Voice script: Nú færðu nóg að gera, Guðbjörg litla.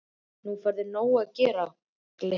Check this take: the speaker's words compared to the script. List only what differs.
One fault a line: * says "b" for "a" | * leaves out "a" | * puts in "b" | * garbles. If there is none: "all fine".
* leaves out "Guðbjörg"